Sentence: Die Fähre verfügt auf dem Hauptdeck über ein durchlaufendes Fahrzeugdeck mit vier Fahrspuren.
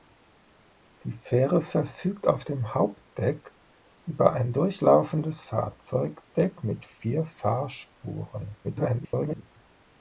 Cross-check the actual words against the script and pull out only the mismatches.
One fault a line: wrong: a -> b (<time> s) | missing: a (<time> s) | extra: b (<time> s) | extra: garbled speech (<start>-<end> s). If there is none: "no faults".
extra: garbled speech (8.6-9.4 s)